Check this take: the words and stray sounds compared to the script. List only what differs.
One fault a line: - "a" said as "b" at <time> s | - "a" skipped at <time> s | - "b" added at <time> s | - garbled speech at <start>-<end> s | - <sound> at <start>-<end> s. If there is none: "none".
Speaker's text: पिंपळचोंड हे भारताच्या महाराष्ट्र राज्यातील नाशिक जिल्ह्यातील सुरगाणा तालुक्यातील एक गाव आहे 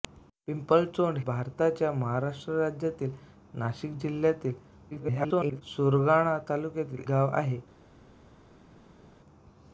- "हे" skipped at 1.2 s
- garbled speech at 4.9-5.6 s
- "एक" skipped at 7.0 s